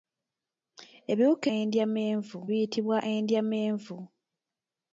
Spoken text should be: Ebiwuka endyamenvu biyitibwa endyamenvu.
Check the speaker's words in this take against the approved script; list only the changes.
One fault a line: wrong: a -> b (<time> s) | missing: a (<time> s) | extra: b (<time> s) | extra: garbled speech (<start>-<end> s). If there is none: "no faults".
no faults